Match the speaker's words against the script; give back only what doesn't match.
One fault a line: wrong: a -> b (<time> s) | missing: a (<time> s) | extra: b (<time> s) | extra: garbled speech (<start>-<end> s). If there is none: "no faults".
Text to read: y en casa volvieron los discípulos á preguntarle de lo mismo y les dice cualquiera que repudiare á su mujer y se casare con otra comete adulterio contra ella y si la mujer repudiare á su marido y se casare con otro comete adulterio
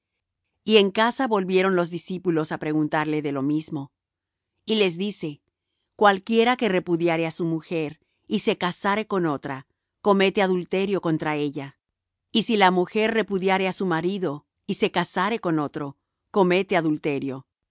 no faults